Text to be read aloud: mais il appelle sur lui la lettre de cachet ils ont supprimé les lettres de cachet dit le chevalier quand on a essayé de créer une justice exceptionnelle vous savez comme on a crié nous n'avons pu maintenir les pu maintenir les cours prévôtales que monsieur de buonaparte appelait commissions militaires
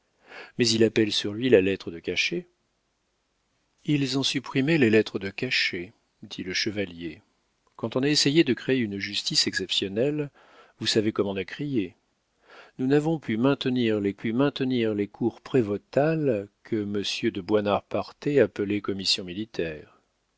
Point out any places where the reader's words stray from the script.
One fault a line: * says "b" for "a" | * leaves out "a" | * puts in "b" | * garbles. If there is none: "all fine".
all fine